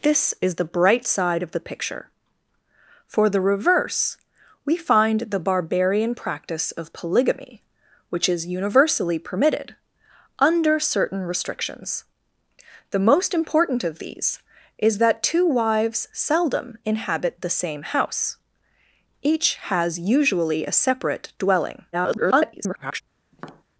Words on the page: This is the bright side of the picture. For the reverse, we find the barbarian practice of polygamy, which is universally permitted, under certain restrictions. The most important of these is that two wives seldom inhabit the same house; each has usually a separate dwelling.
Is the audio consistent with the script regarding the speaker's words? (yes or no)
no